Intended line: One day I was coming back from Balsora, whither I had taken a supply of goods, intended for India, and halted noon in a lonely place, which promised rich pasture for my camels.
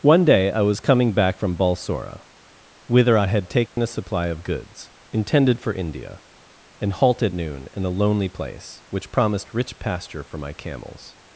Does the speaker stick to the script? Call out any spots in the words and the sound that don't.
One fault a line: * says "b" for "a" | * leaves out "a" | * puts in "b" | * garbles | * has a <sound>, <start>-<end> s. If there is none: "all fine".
* has a dropout, 3.7-3.8 s